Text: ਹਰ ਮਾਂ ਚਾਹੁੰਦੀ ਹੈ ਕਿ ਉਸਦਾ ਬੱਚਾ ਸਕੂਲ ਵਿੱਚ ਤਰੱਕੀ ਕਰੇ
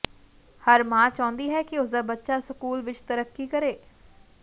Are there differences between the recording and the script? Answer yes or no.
no